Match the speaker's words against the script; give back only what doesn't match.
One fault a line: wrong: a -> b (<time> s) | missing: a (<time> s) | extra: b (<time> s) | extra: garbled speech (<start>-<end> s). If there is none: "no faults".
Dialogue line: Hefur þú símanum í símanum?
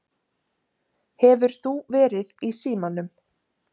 wrong: símanum -> verið (2.0 s)